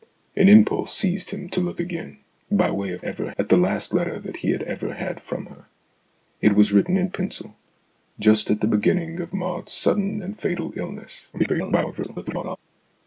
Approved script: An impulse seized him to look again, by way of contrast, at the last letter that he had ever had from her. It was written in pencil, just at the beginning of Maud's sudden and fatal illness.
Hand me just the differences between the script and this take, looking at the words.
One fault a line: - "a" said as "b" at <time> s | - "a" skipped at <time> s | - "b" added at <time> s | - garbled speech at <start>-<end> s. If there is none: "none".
- "contrast" said as "ever" at 3.0 s
- garbled speech at 11.3-12.6 s